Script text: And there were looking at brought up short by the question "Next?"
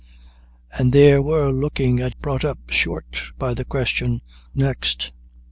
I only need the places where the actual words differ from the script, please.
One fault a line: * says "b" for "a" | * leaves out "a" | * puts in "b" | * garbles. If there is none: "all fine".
all fine